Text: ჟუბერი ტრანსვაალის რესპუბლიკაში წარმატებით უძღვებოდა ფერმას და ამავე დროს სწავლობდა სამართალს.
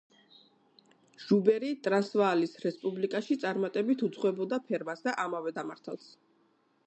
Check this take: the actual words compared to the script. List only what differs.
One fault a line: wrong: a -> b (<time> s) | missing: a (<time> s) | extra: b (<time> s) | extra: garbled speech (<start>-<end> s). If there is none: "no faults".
missing: დროს სწავლობდა (5.5 s)